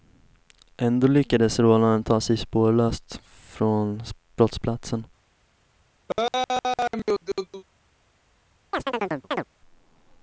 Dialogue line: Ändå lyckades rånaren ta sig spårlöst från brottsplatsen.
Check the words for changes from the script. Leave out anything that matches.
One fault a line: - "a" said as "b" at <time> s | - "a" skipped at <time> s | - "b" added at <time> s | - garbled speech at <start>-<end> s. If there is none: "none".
none